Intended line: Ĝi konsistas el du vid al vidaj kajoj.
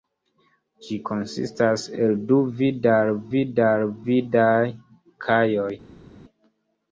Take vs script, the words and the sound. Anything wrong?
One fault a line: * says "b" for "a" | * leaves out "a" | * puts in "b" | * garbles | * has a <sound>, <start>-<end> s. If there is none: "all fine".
* puts in "vid al"